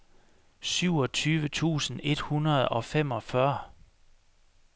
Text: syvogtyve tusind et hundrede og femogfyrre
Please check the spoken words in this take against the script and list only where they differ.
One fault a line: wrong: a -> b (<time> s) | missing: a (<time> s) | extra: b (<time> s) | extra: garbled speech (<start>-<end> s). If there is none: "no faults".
no faults